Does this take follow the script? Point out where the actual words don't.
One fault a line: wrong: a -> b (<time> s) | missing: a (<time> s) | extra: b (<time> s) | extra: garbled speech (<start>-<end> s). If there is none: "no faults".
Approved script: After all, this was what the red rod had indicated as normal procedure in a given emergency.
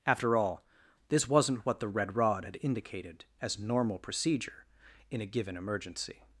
wrong: was -> wasn't (1.3 s)